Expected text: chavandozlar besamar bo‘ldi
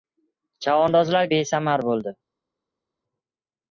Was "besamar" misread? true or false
false